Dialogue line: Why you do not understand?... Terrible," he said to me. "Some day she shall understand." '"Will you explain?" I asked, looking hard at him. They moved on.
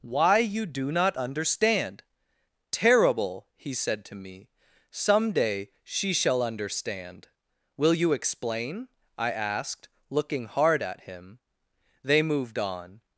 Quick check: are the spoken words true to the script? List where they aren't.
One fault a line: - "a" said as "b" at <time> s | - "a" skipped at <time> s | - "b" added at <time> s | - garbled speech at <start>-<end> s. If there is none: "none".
none